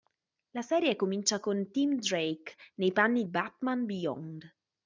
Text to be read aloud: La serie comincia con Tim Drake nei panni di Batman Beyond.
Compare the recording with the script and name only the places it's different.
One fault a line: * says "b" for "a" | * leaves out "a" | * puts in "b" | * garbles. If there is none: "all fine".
* leaves out "di"